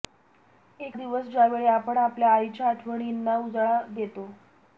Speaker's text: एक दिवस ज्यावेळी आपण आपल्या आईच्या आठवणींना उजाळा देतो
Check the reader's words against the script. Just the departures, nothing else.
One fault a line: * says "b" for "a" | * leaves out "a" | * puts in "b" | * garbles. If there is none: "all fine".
all fine